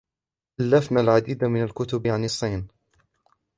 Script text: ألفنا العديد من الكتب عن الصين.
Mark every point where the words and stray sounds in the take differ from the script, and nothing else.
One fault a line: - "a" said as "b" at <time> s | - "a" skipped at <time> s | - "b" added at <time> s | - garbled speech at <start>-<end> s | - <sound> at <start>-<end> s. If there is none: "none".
none